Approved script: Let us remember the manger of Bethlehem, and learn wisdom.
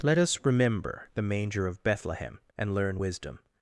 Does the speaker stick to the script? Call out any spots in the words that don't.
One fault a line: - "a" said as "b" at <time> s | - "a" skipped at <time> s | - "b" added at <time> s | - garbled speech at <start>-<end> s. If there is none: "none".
none